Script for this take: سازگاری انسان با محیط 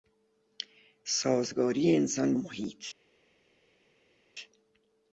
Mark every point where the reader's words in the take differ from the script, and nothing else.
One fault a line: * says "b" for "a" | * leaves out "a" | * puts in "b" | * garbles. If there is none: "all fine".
* leaves out "با"